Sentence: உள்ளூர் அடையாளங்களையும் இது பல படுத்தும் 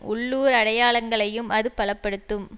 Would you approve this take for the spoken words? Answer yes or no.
no